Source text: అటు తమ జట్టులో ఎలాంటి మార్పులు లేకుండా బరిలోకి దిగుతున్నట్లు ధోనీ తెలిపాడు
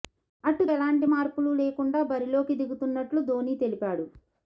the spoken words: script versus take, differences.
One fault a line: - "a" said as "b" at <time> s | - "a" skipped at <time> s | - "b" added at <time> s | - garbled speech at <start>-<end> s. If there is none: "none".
- "తమ జట్టులో" skipped at 0.6 s